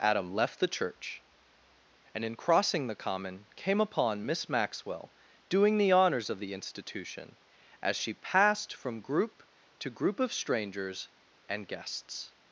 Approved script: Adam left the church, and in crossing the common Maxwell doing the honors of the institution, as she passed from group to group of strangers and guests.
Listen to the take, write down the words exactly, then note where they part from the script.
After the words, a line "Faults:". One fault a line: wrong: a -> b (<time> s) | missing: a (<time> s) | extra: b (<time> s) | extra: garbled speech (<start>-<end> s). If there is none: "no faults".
Adam left the church, and in crossing the common came upon Miss Maxwell doing the honors of the institution, as she passed from group to group of strangers and guests.
Faults:
extra: came upon Miss (3.5 s)